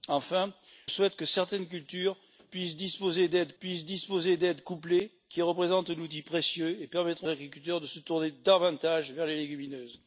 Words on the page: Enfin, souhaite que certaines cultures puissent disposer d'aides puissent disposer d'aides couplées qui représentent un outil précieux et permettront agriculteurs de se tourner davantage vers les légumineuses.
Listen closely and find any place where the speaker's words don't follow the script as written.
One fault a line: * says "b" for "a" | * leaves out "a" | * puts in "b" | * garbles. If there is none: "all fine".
all fine